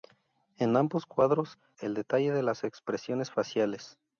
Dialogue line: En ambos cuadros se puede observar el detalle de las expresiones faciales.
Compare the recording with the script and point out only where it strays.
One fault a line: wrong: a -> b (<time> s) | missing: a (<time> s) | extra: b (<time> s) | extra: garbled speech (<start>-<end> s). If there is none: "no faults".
missing: se puede observar (1.6 s)